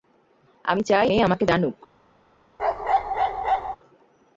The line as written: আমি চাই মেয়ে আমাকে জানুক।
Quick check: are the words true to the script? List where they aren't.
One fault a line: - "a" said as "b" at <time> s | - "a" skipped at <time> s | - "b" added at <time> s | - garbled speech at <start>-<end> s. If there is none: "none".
none